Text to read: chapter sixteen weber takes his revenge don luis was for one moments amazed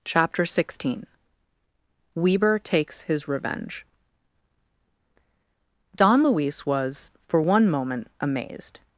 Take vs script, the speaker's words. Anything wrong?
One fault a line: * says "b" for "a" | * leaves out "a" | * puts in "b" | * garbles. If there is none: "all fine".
* says "moment" for "moments"